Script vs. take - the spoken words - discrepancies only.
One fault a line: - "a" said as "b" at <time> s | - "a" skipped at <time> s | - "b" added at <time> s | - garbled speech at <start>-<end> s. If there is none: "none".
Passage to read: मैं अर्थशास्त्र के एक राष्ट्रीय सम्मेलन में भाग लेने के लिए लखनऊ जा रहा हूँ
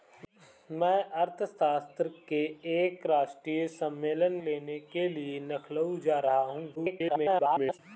- "में भाग" skipped at 4.3 s
- garbled speech at 6.8-7.8 s